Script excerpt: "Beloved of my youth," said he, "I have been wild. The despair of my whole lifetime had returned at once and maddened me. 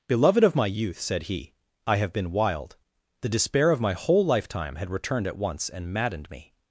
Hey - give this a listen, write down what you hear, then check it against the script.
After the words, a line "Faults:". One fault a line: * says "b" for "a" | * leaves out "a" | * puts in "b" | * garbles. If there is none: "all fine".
"Beloved of my youth," said he, "I have been wild. The despair of my whole lifetime had returned at once and maddened me.
Faults:
all fine